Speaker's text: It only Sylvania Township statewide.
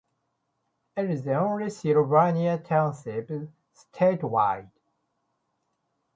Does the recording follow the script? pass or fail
fail